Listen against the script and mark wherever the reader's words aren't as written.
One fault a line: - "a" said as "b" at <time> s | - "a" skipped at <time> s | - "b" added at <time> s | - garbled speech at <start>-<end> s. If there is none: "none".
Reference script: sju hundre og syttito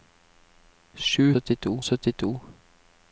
- "hundre" said as "syttito" at 1.3 s